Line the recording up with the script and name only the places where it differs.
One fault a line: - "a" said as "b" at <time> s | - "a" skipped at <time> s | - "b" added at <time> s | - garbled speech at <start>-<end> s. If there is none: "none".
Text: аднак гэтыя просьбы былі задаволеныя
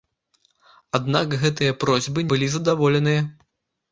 none